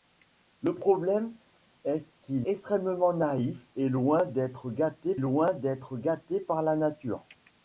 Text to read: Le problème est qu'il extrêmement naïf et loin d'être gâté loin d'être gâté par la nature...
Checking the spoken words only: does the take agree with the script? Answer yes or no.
yes